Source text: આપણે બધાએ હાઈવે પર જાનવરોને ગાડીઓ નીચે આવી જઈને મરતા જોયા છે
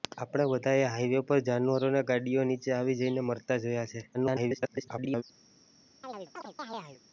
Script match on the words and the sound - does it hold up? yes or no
no